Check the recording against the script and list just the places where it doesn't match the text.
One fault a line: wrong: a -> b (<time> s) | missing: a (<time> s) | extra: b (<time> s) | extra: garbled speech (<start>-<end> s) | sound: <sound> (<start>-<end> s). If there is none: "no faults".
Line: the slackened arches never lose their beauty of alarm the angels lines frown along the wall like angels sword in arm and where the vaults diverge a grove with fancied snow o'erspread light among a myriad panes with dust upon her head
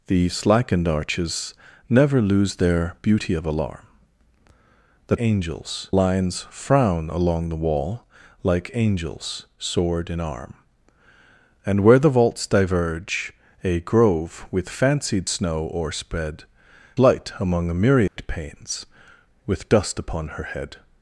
sound: dropout (18.1-18.2 s)